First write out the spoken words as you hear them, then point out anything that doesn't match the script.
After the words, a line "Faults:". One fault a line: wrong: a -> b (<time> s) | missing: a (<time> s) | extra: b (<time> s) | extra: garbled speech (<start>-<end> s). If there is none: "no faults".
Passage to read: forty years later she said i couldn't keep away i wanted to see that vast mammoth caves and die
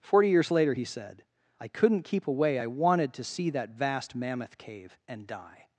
forty years later he said i couldn't keep away i wanted to see that vast mammoth cave and die
Faults:
wrong: she -> he (0.7 s)
wrong: caves -> cave (4.6 s)